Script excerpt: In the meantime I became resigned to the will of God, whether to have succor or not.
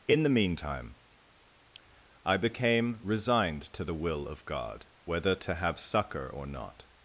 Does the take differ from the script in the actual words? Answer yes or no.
no